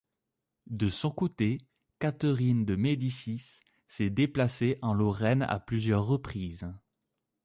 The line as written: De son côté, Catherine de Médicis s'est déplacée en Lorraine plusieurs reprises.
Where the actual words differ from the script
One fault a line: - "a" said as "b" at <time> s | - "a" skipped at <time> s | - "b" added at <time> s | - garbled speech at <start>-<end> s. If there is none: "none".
- "à" added at 5.4 s